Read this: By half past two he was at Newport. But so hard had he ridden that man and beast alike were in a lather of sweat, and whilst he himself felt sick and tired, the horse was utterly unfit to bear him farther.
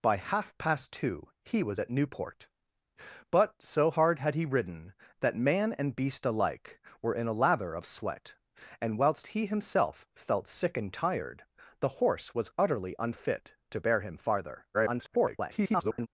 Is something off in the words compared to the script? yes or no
yes